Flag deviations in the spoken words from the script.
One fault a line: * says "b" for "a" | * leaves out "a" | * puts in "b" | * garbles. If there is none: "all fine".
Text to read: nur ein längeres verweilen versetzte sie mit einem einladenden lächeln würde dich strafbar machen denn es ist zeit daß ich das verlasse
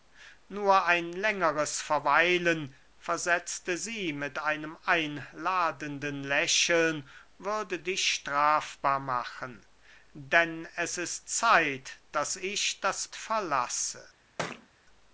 all fine